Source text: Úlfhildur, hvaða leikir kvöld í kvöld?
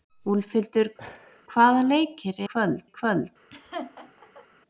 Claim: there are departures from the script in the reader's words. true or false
false